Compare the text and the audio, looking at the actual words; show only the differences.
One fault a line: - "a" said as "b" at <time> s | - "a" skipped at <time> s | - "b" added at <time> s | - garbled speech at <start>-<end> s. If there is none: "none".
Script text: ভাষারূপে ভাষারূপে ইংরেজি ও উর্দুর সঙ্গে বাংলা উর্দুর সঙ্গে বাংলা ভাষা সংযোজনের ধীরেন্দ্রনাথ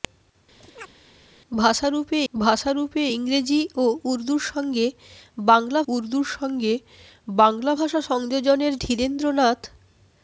none